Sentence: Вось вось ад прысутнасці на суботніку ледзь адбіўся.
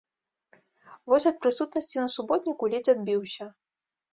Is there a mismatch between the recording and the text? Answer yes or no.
yes